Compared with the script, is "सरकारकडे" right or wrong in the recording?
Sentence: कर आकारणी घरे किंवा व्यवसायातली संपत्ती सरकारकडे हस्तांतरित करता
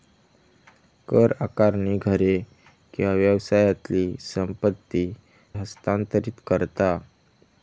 wrong